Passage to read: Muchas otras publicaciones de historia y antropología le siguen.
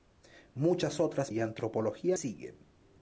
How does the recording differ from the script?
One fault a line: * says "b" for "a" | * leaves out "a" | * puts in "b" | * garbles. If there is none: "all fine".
* leaves out "publicaciones de historia"
* leaves out "le"